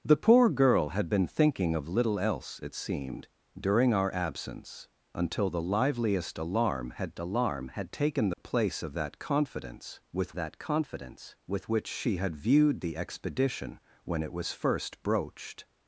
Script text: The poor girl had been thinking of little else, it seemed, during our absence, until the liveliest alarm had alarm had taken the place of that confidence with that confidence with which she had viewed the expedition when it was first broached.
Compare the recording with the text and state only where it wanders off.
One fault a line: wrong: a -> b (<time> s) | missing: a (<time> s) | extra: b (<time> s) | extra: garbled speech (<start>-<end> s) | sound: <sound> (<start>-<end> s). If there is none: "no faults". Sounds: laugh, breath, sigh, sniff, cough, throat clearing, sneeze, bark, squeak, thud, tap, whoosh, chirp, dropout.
sound: dropout (8.3-8.4 s)